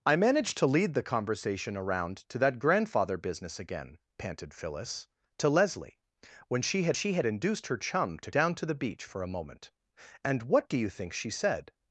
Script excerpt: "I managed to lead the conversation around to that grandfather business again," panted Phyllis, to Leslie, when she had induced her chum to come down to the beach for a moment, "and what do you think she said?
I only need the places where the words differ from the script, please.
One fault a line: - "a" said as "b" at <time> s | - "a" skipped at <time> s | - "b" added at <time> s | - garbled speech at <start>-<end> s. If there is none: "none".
- "she had" added at 6.9 s
- "come" skipped at 8.3 s